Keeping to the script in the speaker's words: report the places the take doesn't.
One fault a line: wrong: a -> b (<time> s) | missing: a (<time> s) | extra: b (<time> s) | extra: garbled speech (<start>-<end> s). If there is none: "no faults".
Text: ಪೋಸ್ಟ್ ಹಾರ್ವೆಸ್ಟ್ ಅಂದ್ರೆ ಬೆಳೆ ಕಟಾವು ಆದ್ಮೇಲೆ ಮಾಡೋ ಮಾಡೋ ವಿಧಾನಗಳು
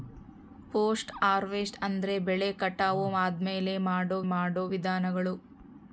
no faults